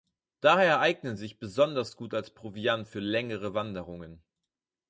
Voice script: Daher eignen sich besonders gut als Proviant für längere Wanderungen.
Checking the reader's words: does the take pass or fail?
pass